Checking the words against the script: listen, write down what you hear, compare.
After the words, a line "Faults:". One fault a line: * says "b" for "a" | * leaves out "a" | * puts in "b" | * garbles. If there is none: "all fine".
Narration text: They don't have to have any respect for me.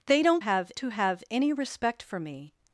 They don't have to have any respect for me.
Faults:
all fine